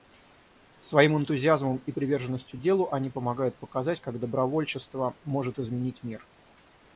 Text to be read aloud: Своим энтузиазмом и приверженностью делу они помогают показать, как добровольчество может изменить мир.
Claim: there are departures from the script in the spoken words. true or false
false